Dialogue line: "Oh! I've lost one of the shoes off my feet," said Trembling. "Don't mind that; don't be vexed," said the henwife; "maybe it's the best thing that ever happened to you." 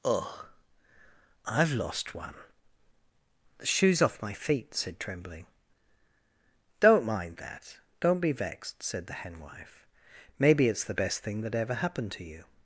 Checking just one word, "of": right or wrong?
wrong